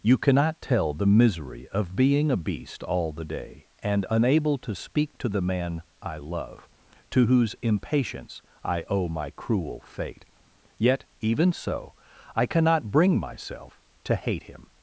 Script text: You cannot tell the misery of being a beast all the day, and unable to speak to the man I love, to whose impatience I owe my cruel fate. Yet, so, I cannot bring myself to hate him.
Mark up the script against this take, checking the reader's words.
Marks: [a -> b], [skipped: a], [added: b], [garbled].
You cannot tell the misery of being a beast all the day, and unable to speak to the man I love, to whose impatience I owe my cruel fate. Yet, [added: even] so, I cannot bring myself to hate him.